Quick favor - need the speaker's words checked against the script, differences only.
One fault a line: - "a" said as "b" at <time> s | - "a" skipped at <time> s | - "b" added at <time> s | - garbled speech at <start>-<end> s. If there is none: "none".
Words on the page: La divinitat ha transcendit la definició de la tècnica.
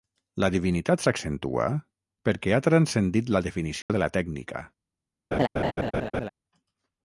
- "s'accentua perquè" added at 1.0 s